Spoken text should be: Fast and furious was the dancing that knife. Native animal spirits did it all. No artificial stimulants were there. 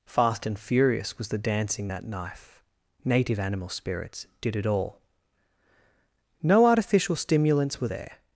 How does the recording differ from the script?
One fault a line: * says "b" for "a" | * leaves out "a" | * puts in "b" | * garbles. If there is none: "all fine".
all fine